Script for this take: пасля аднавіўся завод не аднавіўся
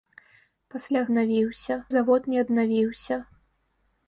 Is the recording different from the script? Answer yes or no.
no